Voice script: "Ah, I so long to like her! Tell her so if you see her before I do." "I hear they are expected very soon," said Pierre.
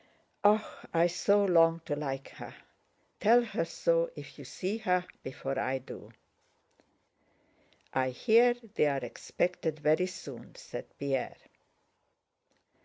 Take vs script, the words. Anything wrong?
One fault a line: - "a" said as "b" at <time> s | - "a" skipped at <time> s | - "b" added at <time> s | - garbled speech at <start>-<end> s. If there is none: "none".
none